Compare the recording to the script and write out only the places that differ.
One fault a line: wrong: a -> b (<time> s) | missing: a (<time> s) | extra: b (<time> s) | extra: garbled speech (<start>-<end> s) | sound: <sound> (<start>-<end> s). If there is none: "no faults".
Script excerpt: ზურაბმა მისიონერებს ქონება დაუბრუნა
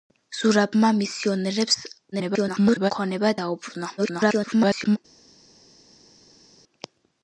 extra: garbled speech (2.1-2.9 s)
extra: garbled speech (4.0-5.0 s)